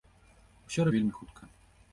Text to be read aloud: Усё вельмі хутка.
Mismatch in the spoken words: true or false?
false